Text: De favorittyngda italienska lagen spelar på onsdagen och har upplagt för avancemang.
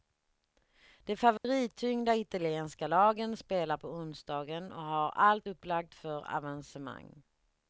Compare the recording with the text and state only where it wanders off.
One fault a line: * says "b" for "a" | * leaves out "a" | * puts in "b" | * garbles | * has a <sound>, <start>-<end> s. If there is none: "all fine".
* has a dropout, 1.4-1.4 s
* puts in "allt"